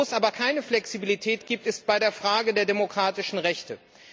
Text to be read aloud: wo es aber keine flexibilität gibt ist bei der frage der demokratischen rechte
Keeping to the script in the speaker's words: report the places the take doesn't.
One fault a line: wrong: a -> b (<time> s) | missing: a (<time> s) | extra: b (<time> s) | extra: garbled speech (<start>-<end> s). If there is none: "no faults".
no faults